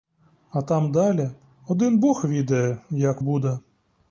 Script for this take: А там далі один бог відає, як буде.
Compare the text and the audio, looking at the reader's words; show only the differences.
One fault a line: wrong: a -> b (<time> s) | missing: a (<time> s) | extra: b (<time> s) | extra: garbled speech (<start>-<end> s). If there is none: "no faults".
no faults